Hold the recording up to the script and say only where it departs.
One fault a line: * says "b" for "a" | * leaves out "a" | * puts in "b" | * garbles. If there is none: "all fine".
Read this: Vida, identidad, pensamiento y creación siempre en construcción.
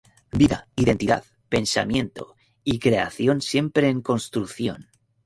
all fine